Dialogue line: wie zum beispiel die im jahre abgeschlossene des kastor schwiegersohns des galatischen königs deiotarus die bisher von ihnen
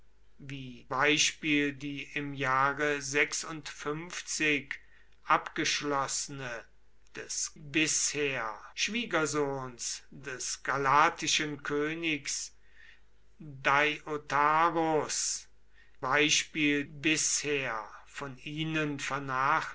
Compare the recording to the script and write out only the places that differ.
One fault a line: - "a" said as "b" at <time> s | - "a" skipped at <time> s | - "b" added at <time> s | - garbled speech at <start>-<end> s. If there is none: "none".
- "zum" skipped at 0.9 s
- "kastor" said as "bisher" at 7.6 s
- "die" said as "beispiel" at 16.0 s